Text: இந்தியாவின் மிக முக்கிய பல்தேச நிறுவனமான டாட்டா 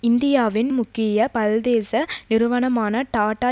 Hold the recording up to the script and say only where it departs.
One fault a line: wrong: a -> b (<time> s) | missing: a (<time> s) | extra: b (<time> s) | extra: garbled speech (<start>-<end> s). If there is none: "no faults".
missing: மிக (0.7 s)